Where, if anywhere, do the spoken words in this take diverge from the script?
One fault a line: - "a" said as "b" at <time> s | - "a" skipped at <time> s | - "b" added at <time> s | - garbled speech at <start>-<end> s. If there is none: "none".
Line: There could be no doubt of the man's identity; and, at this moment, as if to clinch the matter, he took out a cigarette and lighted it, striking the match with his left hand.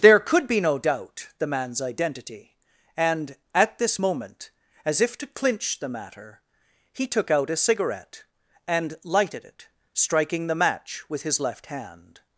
- "of" skipped at 1.3 s